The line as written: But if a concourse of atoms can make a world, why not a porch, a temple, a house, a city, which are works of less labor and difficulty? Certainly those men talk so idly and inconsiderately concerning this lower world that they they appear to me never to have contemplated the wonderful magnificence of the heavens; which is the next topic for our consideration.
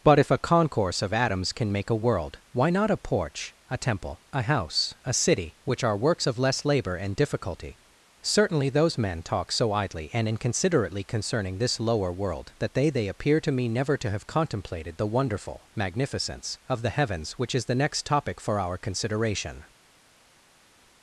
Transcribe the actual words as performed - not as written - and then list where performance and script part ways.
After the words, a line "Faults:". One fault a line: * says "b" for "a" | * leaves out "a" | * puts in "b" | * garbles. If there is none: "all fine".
But if a concourse of atoms can make a world, why not a porch, a temple, a house, a city, which are works of less labor and difficulty? Certainly those men talk so idly and inconsiderately concerning this lower world that they they appear to me never to have contemplated the wonderful magnificence of the heavens; which is the next topic for our consideration.
Faults:
all fine